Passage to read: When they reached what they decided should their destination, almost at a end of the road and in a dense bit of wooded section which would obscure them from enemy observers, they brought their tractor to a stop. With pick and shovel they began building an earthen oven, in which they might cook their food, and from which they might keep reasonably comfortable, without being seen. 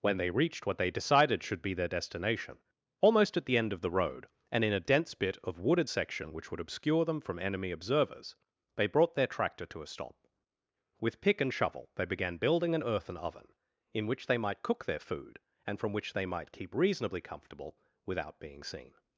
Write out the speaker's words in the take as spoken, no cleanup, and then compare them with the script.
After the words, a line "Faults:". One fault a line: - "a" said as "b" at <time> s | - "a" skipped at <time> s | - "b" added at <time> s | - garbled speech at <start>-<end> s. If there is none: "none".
When they reached what they decided should be their destination, almost at the end of the road and in a dense bit of wooded section which would obscure them from enemy observers, they brought their tractor to a stop. With pick and shovel they began building an earthen oven, in which they might cook their food, and from which they might keep reasonably comfortable, without being seen.
Faults:
- "be" added at 1.6 s
- "a" said as "the" at 3.5 s